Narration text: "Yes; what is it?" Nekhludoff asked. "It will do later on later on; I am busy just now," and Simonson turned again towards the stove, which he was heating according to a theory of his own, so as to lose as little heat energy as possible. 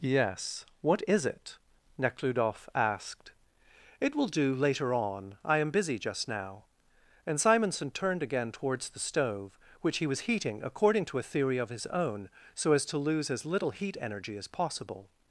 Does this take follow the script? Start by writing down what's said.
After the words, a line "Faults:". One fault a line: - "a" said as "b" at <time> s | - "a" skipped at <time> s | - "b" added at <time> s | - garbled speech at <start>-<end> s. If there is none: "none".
"Yes; what is it?" Nekhludoff asked. "It will do later on; I am busy just now," and Simonson turned again towards the stove, which he was heating according to a theory of his own, so as to lose as little heat energy as possible.
Faults:
- "later on" skipped at 5.4 s